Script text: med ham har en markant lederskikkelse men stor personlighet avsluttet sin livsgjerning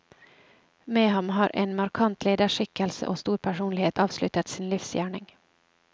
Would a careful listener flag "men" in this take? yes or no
yes